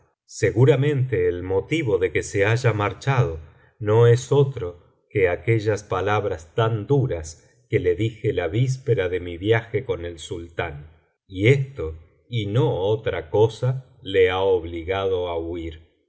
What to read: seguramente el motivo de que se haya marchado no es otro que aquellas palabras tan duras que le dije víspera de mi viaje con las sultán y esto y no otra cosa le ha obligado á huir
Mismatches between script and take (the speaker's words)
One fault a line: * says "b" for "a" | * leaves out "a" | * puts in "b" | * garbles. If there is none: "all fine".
* puts in "la"
* says "el" for "las"